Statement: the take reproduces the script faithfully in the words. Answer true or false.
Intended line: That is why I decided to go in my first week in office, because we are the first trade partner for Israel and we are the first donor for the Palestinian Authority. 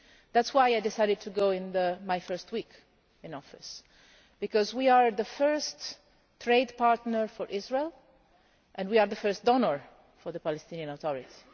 true